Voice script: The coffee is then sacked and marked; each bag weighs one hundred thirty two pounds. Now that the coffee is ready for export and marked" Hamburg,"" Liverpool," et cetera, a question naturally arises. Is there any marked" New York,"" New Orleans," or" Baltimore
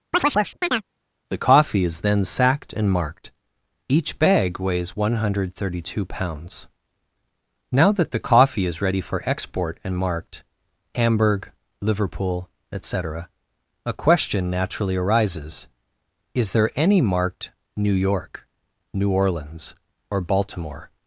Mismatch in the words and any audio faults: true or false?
true